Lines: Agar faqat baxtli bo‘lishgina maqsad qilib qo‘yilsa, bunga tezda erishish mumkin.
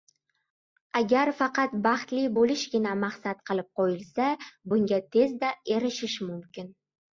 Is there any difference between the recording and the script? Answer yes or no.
no